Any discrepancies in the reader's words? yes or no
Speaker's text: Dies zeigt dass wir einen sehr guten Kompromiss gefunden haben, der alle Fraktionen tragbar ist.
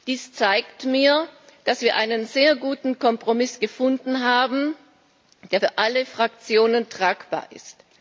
yes